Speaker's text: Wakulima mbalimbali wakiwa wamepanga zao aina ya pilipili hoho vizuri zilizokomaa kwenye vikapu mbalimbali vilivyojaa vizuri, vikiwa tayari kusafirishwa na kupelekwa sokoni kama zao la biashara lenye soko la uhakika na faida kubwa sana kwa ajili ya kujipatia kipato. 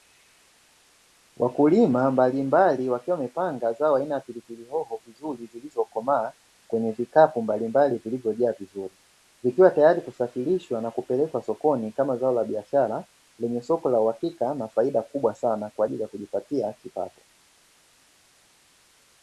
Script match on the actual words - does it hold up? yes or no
yes